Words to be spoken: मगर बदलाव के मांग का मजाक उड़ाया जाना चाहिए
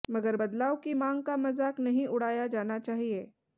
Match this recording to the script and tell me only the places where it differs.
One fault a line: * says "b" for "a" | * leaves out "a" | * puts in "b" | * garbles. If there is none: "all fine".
* says "की" for "के"
* puts in "नहीं"